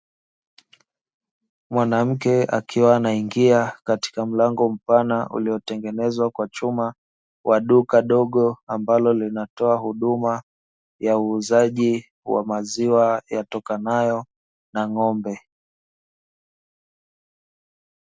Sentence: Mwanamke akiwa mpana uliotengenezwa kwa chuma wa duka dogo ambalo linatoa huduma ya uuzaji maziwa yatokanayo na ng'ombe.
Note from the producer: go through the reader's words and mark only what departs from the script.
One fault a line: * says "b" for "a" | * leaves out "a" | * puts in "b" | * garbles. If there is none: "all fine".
* puts in "anaingia katika mlango"
* puts in "wa"